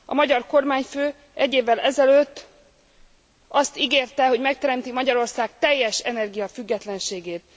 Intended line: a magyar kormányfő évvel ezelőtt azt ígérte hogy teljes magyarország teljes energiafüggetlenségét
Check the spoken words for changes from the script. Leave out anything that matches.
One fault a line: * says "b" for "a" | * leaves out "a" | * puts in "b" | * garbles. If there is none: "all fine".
* puts in "egy"
* says "megteremti" for "teljes"